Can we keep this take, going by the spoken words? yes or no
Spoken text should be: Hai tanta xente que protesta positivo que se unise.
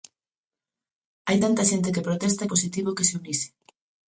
yes